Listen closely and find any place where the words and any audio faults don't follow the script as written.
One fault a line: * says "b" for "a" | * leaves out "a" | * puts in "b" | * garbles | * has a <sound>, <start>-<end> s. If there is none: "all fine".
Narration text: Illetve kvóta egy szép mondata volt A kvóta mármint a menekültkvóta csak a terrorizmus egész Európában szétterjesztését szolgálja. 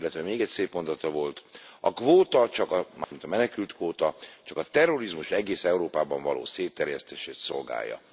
* says "még" for "kvóta"
* has a dropout, 3.0-3.1 s
* puts in "való"